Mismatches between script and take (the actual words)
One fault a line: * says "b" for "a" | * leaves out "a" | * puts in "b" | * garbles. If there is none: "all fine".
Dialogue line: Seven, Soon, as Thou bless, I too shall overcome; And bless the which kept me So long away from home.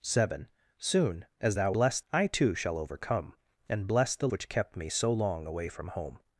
all fine